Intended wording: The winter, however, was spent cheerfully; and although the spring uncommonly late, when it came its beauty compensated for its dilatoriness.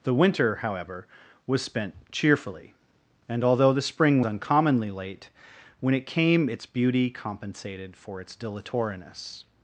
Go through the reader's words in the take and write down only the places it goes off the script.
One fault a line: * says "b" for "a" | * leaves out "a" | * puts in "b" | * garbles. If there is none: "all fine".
all fine